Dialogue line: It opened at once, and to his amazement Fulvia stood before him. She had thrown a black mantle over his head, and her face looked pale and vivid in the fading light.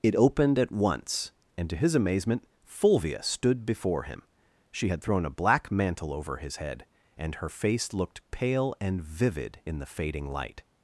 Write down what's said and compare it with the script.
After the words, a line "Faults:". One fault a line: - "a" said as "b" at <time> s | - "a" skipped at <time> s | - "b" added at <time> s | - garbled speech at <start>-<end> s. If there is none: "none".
It opened at once, and to his amazement Fulvia stood before him. She had thrown a black mantle over his head, and her face looked pale and vivid in the fading light.
Faults:
none